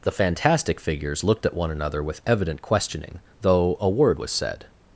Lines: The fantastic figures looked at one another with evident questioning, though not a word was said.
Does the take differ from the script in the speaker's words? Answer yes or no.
yes